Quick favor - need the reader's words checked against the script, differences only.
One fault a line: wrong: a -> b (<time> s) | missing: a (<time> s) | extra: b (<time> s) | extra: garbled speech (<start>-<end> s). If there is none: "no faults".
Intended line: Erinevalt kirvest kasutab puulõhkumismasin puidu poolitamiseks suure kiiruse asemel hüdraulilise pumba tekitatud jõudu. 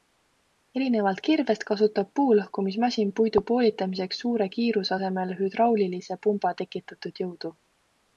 no faults